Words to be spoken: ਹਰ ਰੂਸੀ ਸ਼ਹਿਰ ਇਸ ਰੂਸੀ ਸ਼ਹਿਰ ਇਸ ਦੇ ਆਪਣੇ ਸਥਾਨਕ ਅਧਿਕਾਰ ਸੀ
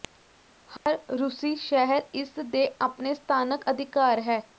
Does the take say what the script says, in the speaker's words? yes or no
no